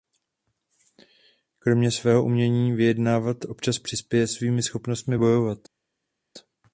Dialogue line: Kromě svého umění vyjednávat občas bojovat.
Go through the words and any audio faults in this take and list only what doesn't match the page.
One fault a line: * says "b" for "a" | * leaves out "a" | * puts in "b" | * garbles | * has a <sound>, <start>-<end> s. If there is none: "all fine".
* puts in "přispěje svými schopnostmi"